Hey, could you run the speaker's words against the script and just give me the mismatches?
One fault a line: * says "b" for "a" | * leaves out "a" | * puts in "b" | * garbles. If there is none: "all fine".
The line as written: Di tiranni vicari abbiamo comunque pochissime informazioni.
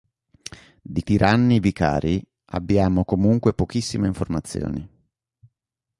all fine